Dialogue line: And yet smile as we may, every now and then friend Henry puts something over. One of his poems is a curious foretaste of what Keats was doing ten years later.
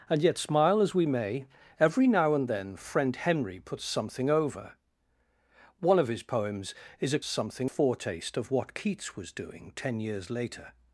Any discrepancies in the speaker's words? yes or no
yes